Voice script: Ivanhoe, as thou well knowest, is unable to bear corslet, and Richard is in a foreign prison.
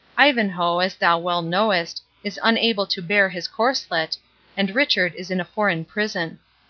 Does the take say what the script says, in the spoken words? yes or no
no